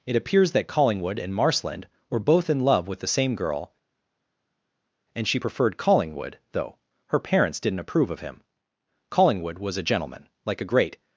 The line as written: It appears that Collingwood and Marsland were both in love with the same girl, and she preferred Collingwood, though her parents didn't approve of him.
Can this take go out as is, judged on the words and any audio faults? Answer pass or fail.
fail